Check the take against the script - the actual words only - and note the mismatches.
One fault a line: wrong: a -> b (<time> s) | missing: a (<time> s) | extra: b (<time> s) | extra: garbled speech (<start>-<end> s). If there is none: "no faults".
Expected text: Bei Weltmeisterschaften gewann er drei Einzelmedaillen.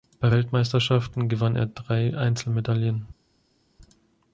no faults